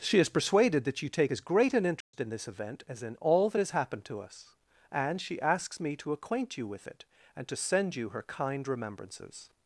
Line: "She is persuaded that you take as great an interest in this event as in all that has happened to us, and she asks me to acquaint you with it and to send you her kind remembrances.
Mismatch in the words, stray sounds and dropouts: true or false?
true